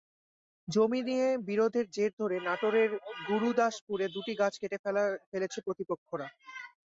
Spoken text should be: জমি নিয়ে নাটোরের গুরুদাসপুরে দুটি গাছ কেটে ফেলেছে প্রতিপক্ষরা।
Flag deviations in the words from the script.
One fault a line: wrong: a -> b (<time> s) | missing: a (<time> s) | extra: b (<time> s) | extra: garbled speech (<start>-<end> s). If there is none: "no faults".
extra: বিরোধের জের ধরে (1.5 s)